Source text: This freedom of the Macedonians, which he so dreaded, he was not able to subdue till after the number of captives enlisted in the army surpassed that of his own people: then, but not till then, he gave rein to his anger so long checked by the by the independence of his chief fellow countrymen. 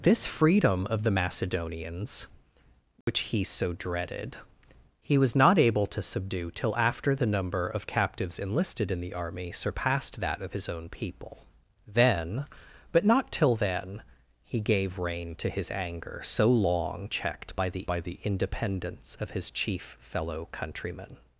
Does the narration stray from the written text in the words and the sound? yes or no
yes